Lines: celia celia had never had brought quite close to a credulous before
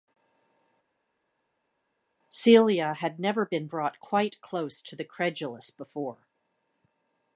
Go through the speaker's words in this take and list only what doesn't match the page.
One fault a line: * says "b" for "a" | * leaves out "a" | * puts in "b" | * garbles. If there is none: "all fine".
* leaves out "celia"
* says "been" for "had"
* says "the" for "a"